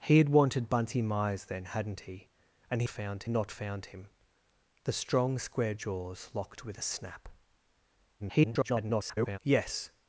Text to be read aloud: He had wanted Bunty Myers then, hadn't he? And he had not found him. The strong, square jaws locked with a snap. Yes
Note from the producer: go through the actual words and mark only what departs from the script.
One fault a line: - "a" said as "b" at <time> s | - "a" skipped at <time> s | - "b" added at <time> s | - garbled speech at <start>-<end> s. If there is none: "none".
- "had" said as "found" at 2.9 s
- garbled speech at 8.2-9.4 s